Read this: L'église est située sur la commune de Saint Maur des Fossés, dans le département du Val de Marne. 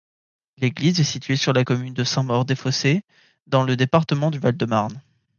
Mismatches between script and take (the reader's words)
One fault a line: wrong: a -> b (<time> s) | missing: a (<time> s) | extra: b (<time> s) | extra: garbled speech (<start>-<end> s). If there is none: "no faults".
no faults